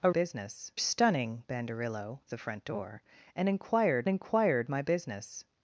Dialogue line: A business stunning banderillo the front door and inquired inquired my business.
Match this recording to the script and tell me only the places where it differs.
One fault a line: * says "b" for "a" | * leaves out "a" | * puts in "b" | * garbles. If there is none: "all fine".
all fine